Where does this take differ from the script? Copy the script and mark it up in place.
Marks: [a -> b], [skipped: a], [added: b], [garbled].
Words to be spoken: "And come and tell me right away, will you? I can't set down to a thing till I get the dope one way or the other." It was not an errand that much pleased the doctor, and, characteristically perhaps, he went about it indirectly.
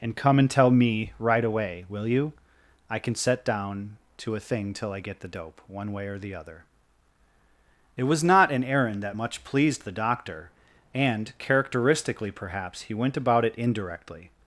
"And come and tell me right away, will you? I [can't -> can] set down to a thing till I get the dope one way or the other." It was not an errand that much pleased the doctor, and, characteristically perhaps, he went about it indirectly.